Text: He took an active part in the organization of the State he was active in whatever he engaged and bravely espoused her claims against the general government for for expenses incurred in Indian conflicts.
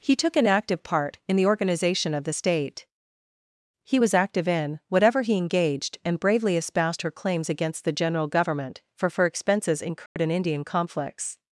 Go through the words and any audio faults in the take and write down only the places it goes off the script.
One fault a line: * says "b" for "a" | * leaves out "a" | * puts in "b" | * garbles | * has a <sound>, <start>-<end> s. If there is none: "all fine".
* has a dropout, 10.1-10.2 s